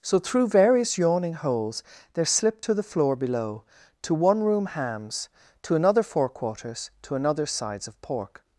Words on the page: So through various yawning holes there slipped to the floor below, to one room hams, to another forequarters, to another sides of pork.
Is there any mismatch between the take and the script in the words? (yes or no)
no